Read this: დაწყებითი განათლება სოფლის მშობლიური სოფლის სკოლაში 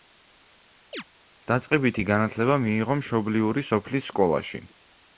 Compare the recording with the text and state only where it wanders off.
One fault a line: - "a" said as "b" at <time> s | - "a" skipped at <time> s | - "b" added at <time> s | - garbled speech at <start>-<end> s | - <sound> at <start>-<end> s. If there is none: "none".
- chirp at 0.9-1.0 s
- "სოფლის" said as "მიიღო" at 2.7 s